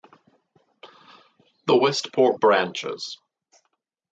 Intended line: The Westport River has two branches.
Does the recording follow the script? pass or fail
fail